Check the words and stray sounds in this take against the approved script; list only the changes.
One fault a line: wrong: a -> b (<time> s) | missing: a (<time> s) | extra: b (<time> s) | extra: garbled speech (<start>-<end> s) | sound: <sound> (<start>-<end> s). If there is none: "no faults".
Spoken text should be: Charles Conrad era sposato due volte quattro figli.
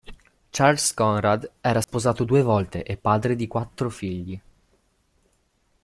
sound: dropout (1.8-1.9 s)
extra: e padre di (2.8 s)